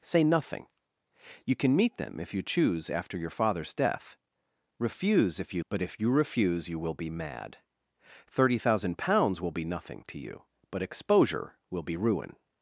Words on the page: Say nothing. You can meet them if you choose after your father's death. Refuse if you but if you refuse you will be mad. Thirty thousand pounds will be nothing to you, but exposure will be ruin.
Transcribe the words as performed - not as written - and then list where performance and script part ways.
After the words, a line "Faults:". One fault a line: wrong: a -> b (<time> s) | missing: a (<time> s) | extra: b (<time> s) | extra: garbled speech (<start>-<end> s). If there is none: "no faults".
Say nothing. You can meet them if you choose after your father's death. Refuse if you but if you refuse you will be mad. Thirty thousand pounds will be nothing to you, but exposure will be ruin.
Faults:
no faults